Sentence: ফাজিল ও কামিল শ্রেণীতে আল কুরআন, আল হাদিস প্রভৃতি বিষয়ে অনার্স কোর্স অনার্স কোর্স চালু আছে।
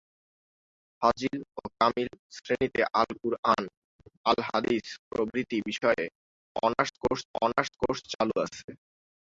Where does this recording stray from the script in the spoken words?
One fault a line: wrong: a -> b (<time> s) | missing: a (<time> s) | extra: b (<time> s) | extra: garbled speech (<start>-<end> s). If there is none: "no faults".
no faults